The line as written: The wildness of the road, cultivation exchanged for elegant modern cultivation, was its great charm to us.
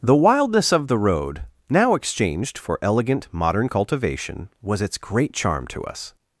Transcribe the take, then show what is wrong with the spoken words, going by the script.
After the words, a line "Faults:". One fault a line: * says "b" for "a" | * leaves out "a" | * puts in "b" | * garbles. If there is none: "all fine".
The wildness of the road, now exchanged for elegant modern cultivation, was its great charm to us.
Faults:
* says "now" for "cultivation"